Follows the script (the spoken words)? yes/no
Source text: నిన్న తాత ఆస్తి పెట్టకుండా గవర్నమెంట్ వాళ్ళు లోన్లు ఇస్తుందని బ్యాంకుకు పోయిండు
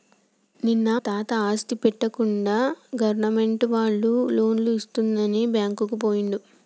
yes